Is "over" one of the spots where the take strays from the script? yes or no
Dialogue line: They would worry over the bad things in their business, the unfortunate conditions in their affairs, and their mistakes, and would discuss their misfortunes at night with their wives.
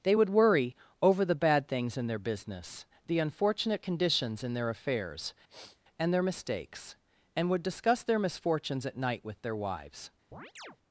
no